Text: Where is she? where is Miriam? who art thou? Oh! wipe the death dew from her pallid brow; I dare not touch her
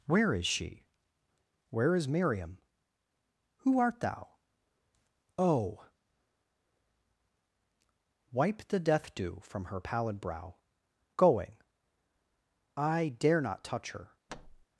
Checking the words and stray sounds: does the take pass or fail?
fail